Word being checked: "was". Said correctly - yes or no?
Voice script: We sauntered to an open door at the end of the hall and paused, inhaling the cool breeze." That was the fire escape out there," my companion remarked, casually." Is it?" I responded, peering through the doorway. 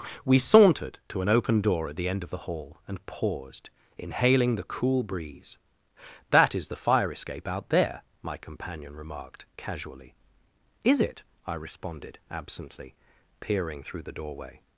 no